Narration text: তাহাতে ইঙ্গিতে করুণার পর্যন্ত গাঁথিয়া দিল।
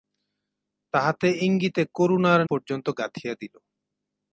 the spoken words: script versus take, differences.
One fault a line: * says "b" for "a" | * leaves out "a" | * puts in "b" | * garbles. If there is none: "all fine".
all fine